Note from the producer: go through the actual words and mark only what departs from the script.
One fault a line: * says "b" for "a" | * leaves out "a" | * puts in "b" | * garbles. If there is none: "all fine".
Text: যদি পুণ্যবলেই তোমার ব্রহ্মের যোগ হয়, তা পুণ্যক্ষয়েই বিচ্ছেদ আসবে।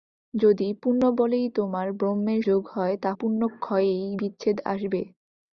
all fine